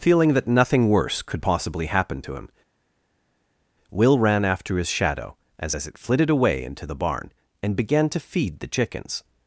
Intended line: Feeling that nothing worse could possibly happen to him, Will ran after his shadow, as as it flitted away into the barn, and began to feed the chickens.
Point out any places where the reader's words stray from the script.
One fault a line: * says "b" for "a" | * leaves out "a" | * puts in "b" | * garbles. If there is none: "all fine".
all fine